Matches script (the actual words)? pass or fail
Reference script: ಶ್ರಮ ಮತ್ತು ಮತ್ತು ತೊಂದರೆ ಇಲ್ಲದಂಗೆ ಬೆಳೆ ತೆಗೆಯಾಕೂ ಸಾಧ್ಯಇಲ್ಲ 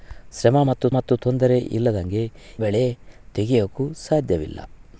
pass